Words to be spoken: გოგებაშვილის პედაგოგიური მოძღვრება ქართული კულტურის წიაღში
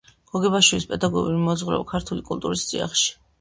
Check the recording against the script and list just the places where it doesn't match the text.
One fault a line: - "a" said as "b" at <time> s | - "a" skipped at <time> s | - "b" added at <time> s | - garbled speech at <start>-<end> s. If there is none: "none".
none